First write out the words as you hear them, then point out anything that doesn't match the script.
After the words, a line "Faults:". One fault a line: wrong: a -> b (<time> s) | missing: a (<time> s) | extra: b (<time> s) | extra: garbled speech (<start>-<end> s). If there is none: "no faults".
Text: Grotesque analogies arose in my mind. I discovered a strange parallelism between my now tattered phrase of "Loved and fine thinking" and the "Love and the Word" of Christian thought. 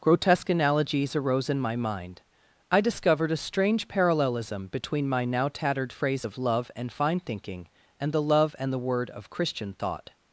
Grotesque analogies arose in my mind. I discovered a strange parallelism between my now tattered phrase of "Love and fine thinking" and the "Love and the Word" of Christian thought.
Faults:
wrong: Loved -> Love (6.4 s)